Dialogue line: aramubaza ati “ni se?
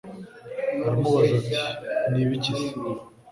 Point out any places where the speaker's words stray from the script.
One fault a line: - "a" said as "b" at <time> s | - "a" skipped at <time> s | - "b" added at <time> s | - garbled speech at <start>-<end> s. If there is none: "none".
- "ibiki" added at 2.2 s